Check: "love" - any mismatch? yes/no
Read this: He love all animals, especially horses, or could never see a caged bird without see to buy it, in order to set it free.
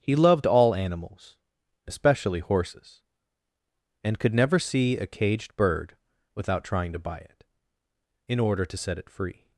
yes